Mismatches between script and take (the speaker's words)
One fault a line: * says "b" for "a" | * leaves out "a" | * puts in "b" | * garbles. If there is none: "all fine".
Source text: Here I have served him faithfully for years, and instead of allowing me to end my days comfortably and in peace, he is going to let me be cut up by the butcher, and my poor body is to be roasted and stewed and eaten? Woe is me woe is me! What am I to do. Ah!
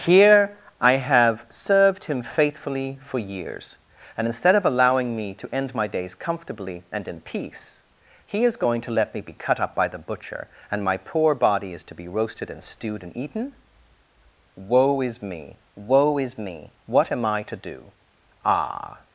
all fine